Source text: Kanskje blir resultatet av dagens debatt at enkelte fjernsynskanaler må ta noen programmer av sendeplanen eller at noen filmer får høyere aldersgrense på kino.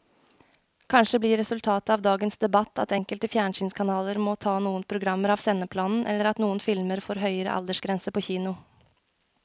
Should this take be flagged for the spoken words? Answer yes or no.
no